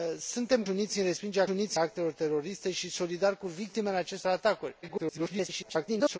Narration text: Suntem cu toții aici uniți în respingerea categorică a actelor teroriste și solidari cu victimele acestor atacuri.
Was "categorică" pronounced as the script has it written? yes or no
no